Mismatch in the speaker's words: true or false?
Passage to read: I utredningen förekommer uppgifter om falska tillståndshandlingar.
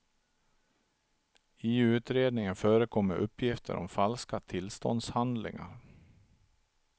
false